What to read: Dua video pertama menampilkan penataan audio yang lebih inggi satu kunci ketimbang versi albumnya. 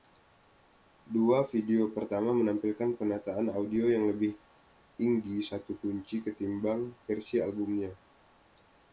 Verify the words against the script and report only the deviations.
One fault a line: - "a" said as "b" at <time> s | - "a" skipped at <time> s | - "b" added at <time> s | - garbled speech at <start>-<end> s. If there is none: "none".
none